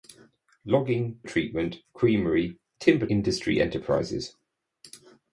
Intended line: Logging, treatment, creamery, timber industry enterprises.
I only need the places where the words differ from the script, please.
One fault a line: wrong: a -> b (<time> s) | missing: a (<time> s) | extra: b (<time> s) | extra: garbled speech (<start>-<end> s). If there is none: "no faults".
no faults